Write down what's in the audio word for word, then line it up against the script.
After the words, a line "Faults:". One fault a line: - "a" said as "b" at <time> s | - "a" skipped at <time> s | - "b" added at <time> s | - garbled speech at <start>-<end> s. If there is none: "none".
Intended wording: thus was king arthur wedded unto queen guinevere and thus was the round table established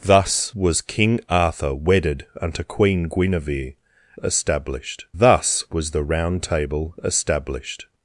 thus was king arthur wedded unto queen guinevere established thus was the round table established
Faults:
- "and" said as "established" at 4.2 s